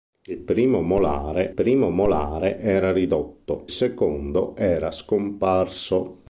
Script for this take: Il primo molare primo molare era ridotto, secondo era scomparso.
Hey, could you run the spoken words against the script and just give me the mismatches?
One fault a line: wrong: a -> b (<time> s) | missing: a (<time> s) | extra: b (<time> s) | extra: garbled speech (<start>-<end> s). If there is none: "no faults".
no faults